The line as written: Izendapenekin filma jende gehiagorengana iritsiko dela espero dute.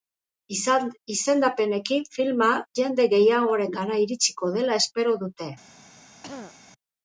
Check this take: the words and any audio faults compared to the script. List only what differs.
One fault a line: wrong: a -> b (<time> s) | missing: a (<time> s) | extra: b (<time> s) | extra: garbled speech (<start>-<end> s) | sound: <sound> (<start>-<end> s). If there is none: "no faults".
sound: throat clearing (6.2-6.6 s)